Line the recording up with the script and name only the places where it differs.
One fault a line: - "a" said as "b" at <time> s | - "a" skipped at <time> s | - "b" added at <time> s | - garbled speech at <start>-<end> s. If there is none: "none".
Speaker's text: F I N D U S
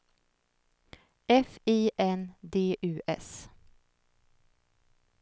none